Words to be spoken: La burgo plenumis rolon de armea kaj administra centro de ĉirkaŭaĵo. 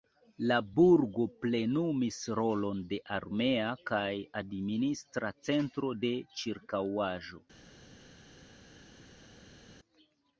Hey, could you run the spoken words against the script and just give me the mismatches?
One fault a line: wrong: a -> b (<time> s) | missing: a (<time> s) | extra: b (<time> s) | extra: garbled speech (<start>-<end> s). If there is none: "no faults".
no faults